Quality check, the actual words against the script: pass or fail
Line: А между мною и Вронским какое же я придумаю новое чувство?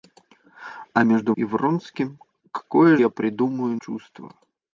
fail